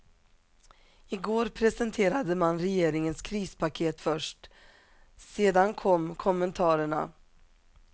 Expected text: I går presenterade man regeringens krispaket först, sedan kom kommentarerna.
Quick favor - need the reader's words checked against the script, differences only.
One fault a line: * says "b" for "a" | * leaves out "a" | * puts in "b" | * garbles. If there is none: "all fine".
all fine